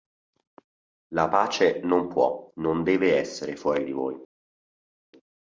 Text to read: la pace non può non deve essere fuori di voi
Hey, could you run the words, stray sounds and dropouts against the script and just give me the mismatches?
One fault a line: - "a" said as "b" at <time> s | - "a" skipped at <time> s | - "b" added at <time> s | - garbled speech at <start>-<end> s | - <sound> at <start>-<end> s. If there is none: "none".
none